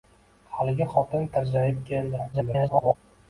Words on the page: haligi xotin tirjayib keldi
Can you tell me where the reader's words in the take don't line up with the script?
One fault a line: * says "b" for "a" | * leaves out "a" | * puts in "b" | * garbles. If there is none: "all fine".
* garbles